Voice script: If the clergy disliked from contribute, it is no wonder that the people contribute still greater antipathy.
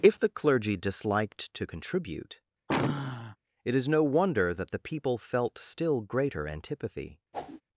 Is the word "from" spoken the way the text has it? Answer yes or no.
no